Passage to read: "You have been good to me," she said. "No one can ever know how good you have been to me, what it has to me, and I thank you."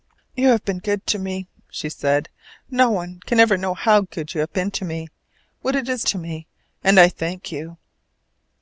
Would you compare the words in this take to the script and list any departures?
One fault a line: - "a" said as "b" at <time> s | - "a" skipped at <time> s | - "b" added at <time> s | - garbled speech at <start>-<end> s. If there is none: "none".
none